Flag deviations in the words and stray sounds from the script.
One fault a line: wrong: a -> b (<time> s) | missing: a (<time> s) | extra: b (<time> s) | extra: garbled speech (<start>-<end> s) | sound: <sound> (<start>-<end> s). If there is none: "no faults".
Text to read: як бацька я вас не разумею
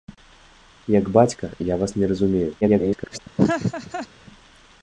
extra: garbled speech (2.6-3.2 s)
sound: laugh (3.4-4.1 s)